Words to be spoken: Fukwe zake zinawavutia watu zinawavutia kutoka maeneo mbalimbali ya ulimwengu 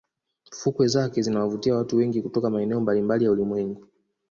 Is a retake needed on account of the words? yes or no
yes